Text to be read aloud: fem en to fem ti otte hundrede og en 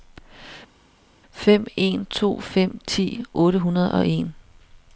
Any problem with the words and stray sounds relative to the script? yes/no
no